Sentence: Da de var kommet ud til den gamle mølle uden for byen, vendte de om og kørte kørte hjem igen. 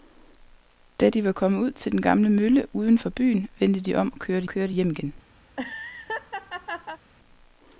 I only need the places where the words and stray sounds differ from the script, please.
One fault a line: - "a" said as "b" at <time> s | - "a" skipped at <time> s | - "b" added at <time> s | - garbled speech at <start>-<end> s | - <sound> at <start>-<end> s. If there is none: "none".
- laugh at 5.5-7.0 s